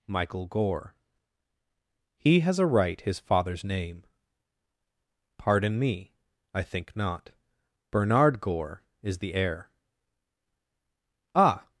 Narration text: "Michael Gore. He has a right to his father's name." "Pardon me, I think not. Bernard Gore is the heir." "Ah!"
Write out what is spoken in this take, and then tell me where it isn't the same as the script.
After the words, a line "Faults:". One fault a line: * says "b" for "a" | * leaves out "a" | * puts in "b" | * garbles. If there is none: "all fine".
"Michael Gore. He has a right his father's name." "Pardon me, I think not. Bernard Gore is the heir." "Ah!"
Faults:
* leaves out "to"